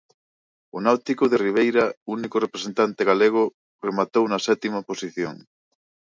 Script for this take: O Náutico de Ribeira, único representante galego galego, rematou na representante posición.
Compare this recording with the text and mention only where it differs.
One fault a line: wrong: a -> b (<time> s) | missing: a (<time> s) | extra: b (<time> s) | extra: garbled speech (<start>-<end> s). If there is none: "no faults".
missing: galego (3.4 s)
wrong: representante -> sétima (4.5 s)